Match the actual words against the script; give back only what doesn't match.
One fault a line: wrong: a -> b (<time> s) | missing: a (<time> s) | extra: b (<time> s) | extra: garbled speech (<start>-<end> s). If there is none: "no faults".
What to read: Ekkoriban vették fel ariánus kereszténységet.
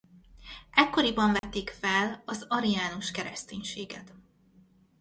extra: az (2.3 s)